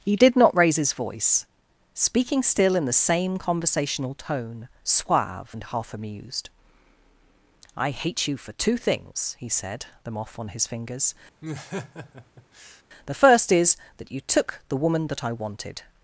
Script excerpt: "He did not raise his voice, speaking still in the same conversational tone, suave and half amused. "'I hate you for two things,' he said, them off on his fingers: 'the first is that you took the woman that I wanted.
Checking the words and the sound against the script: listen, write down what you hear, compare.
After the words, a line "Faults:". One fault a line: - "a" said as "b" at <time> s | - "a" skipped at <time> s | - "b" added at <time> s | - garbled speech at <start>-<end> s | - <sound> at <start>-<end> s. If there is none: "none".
"He did not raise his voice, speaking still in the same conversational tone, suave and half amused. "'I hate you for two things,' he said, them off on his fingers: 'the first is that you took the woman that I wanted.
Faults:
- laugh at 11.4-12.8 s